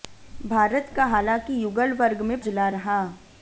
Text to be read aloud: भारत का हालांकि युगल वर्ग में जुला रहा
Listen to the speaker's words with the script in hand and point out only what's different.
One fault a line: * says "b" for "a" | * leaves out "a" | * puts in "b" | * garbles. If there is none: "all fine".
all fine